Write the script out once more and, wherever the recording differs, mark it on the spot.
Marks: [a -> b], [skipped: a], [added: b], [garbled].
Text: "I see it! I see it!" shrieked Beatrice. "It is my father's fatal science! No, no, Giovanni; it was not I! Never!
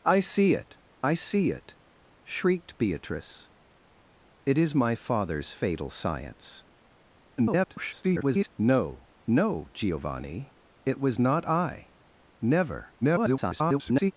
"I see it! I see it!" shrieked Beatrice. "It is my father's fatal science! [garbled] No, no, Giovanni; it was not I! Never! [garbled]